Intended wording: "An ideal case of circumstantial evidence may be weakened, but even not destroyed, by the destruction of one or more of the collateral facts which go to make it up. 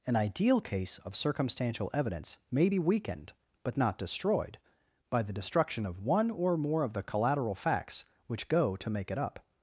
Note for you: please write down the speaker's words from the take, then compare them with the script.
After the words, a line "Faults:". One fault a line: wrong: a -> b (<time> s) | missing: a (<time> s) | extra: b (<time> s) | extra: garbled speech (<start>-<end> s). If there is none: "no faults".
"An ideal case of circumstantial evidence may be weakened, but not destroyed, by the destruction of one or more of the collateral facts which go to make it up.
Faults:
missing: even (3.8 s)